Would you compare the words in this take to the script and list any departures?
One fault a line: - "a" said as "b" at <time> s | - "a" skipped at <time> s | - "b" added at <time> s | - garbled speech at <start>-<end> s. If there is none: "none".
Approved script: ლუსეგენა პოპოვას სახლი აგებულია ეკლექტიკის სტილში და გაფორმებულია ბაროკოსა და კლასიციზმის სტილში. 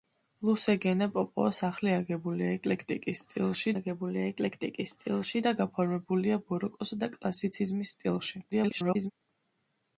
- "აგებულია ეკლექტიკის სტილში" added at 3.7 s
- garbled speech at 8.5-9.1 s